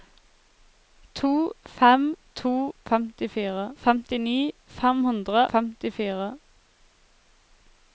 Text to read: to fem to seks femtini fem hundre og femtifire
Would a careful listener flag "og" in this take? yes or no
yes